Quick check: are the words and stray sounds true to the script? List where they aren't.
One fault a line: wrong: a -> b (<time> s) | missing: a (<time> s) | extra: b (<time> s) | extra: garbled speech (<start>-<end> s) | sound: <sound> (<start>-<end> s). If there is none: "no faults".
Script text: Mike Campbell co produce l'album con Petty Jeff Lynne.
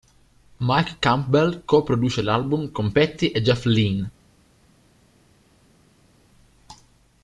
extra: e (3.3 s)